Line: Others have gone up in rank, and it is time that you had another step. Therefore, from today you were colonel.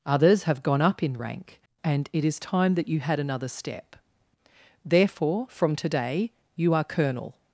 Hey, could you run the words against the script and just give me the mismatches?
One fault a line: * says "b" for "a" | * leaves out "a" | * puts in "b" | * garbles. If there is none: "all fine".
* says "are" for "were"